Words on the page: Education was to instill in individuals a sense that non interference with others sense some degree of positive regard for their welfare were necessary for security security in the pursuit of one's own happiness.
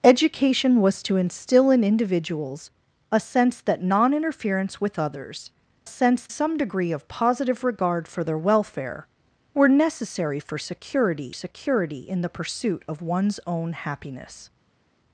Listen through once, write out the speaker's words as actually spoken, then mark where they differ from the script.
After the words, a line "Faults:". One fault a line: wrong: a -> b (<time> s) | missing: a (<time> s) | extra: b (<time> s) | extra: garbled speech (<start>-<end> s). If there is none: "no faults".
Education was to instill in individuals a sense that non interference with others sense some degree of positive regard for their welfare were necessary for security security in the pursuit of one's own happiness.
Faults:
no faults